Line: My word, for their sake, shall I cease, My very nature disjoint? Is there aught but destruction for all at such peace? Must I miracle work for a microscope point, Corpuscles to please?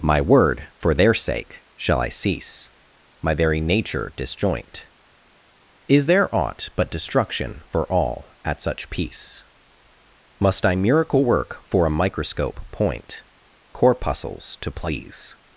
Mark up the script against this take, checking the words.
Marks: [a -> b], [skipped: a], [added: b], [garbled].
My word, for their sake, shall I cease, My very nature disjoint? Is there aught but destruction for all at such peace? Must I miracle work for a microscope point, Corpuscles to please?